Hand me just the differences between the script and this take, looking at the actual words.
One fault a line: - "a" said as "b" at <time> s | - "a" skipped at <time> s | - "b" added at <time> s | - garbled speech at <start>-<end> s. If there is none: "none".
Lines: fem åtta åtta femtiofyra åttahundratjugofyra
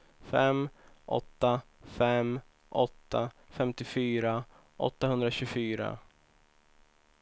- "fem" added at 1.8 s